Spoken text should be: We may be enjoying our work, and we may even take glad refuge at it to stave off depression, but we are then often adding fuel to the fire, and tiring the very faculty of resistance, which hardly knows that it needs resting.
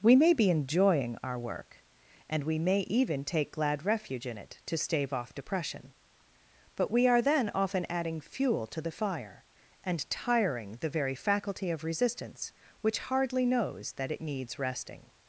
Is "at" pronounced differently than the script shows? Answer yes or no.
yes